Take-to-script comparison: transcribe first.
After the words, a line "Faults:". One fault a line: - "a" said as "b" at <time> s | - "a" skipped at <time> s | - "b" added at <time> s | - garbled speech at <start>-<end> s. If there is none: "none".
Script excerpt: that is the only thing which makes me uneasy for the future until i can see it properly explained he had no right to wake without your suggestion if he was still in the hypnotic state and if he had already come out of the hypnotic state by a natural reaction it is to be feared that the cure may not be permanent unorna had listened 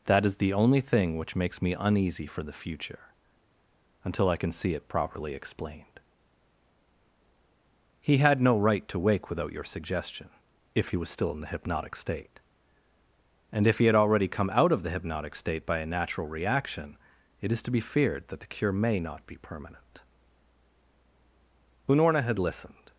that is the only thing which makes me uneasy for the future until i can see it properly explained he had no right to wake without your suggestion if he was still in the hypnotic state and if he had already come out of the hypnotic state by a natural reaction it is to be feared that the cure may not be permanent unorna had listened
Faults:
none